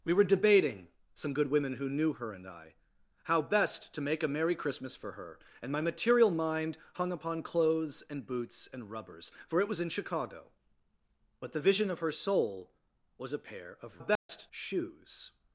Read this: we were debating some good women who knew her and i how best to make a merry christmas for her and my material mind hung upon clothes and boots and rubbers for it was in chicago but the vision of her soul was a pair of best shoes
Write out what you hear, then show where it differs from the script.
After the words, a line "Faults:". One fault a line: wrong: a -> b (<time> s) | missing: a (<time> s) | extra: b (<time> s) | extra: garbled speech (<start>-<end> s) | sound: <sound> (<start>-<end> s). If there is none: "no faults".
we were debating some good women who knew her and i how best to make a merry christmas for her and my material mind hung upon clothes and boots and rubbers for it was in chicago but the vision of her soul was a pair of best shoes
Faults:
sound: dropout (14.2-14.3 s)